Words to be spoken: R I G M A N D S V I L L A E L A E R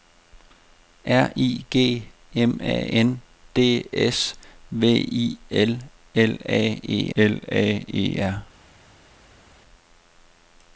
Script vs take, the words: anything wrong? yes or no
no